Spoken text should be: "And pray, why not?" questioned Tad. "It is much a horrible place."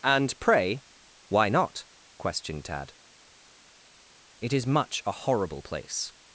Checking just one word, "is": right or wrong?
right